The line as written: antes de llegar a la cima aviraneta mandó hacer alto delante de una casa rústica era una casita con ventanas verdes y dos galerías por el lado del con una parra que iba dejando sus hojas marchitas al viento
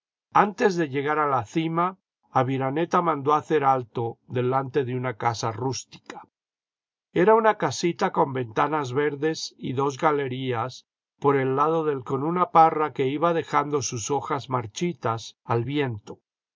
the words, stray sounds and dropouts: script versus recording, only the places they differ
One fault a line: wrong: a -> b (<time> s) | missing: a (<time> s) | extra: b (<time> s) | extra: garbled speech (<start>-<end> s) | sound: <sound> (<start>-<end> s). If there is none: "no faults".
no faults